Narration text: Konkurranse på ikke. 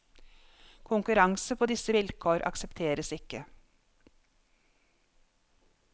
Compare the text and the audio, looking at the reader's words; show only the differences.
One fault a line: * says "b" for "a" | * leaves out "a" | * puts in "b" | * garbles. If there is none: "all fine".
* puts in "disse vilkår aksepteres"